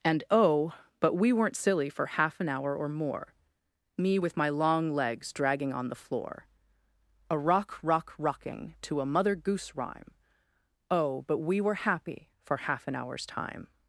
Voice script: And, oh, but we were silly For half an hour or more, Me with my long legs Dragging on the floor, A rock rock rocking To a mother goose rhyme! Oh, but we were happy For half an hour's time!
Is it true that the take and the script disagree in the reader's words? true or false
true